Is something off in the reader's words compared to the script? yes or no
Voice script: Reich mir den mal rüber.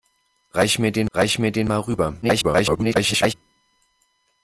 yes